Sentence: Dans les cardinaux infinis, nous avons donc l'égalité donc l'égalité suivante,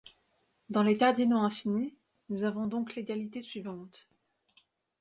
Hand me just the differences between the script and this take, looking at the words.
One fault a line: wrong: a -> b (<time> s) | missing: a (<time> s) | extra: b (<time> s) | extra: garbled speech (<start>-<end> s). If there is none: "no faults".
missing: donc l'égalité (3.4 s)